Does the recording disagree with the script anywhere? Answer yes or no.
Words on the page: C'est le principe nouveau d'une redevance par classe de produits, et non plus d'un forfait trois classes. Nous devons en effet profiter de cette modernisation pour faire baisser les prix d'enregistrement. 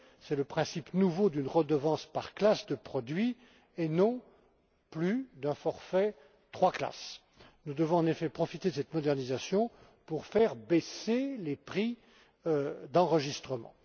no